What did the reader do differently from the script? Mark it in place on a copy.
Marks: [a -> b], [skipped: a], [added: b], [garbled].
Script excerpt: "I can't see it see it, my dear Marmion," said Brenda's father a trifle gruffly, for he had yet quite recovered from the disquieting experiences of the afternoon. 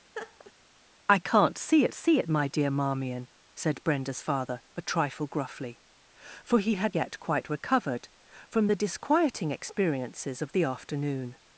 "I can't see it see it, my dear Marmion," said Brenda's father a trifle gruffly, for he had yet quite recovered from the disquieting experiences of the afternoon.